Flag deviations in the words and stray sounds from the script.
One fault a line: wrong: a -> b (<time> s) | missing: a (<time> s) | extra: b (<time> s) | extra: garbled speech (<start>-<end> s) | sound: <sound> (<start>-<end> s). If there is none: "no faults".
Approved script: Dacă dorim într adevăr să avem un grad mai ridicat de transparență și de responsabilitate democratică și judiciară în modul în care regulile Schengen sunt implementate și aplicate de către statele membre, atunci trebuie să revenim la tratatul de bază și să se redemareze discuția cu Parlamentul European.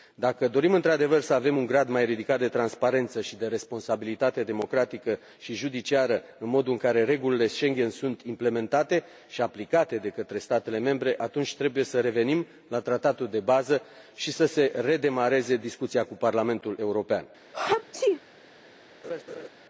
sound: sneeze (17.5-18.2 s)
sound: laugh (19.0-19.5 s)